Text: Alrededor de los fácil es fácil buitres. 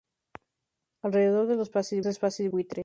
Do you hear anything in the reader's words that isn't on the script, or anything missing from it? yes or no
no